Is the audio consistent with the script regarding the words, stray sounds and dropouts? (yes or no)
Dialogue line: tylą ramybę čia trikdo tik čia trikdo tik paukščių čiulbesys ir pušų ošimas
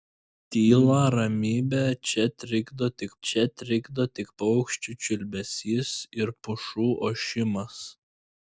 yes